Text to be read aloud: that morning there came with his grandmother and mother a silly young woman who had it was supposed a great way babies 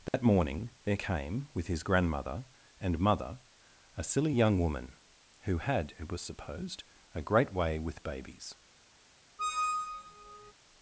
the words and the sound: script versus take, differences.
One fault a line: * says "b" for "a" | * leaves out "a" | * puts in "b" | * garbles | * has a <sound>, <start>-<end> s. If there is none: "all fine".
* has a dropout, 0.1-0.1 s
* puts in "with"
* has a squeak, 9.4-10.5 s